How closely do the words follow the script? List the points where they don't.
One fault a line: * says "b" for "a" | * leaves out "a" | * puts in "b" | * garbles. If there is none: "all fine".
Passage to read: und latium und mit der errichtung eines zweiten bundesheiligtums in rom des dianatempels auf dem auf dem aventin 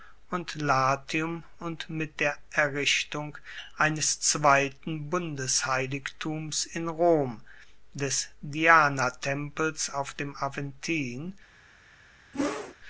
* leaves out "auf dem"